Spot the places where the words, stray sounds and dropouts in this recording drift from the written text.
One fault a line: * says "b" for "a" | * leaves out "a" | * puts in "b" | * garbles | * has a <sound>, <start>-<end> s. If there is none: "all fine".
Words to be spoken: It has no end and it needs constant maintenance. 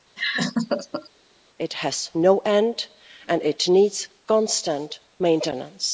* has a laugh, 0.2-1.1 s